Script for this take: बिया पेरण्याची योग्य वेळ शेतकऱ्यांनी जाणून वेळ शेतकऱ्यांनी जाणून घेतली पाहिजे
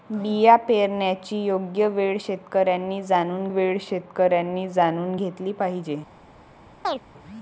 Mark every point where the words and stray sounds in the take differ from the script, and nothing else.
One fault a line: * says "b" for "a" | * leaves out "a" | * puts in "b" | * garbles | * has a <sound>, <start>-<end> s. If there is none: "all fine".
* has a chirp, 6.8-7.0 s